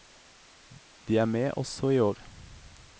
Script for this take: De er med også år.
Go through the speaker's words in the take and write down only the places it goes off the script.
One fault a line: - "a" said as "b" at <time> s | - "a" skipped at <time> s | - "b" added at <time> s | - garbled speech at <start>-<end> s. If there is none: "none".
- "i" added at 1.9 s